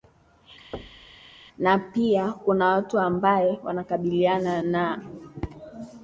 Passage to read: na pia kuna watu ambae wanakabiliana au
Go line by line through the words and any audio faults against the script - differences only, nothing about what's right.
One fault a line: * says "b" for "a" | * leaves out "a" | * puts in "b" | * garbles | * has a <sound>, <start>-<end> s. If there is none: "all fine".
* has a thud, 0.7-1.2 s
* says "na" for "au"